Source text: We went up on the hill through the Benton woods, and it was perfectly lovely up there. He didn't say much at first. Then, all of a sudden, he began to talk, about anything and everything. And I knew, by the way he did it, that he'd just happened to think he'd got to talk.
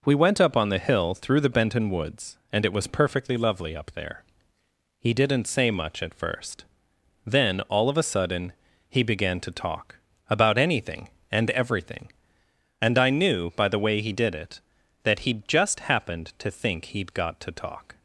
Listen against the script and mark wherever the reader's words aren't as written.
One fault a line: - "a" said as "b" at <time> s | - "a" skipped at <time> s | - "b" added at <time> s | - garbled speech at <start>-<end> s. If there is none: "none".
none